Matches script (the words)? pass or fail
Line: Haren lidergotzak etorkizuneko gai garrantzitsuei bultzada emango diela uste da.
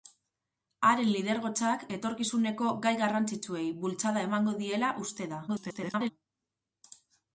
fail